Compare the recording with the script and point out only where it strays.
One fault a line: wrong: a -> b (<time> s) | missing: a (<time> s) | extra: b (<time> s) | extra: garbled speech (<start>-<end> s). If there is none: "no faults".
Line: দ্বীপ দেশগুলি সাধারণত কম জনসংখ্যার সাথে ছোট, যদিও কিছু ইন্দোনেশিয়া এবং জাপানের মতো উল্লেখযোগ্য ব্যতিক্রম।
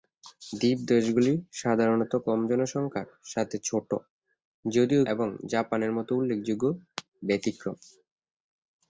missing: কিছু ইন্দোনেশিয়া (5.0 s)